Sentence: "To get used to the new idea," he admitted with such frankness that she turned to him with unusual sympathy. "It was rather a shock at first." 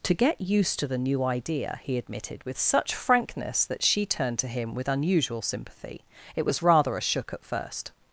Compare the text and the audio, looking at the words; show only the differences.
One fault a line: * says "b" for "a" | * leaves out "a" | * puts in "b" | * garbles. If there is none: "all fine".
* says "shook" for "shock"